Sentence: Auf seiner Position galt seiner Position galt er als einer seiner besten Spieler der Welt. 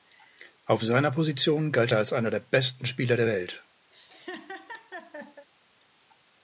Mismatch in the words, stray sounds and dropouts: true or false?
true